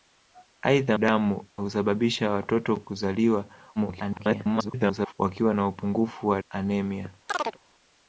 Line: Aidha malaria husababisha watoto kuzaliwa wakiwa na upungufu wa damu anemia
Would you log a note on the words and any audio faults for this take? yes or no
yes